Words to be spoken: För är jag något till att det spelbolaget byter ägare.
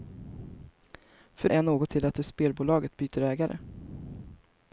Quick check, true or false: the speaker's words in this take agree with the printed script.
true